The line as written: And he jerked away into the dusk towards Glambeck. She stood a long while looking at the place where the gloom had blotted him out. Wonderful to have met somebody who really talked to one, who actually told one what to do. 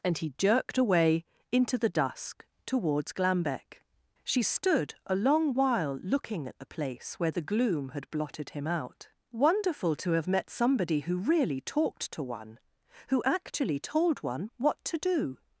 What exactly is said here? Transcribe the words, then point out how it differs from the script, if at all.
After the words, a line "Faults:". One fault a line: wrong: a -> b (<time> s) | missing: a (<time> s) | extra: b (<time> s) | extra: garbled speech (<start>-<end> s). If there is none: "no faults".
And he jerked away into the dusk towards Glambeck. She stood a long while looking at the place where the gloom had blotted him out. Wonderful to have met somebody who really talked to one, who actually told one what to do.
Faults:
no faults